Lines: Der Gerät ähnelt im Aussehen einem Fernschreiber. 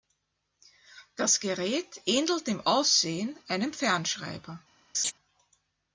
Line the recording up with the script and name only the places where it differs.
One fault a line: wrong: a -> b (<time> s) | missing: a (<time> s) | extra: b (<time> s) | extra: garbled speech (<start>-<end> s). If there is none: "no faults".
wrong: Der -> Das (1.1 s)